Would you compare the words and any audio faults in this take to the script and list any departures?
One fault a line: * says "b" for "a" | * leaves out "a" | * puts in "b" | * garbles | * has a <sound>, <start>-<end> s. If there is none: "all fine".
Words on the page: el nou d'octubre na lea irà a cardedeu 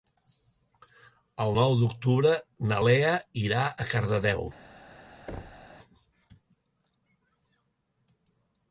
* has a thud, 5.3-5.7 s